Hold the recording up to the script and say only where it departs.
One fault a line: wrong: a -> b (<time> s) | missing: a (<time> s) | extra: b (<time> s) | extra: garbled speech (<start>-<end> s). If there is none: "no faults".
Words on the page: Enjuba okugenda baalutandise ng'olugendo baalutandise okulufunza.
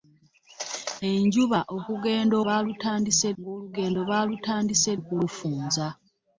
no faults